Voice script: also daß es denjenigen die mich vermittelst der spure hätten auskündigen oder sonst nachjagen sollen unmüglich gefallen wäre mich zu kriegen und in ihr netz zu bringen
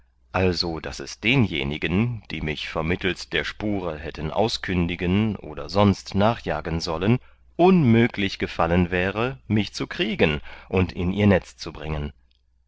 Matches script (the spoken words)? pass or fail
pass